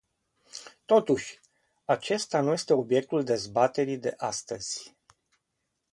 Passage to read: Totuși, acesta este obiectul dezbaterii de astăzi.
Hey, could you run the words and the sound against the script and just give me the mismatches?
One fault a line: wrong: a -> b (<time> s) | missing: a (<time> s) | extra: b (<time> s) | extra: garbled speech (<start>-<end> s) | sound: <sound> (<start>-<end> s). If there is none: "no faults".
extra: nu (2.4 s)